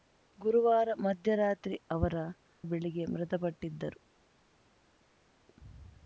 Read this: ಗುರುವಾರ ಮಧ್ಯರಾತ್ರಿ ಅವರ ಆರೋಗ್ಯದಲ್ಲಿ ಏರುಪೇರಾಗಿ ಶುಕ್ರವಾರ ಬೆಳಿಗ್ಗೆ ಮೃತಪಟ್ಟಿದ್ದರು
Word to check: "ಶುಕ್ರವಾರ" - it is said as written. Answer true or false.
false